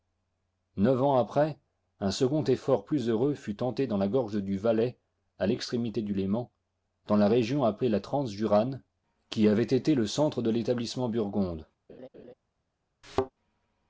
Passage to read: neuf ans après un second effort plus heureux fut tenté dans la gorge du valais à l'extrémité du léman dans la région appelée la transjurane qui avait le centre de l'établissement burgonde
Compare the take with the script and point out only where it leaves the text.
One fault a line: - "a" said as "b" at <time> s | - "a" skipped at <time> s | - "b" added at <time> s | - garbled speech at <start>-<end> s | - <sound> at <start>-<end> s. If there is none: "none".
- "été" added at 9.6 s
- laugh at 11.9-12.3 s
- thud at 13.0-13.3 s